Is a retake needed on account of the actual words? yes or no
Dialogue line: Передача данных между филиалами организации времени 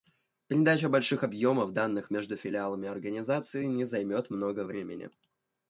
yes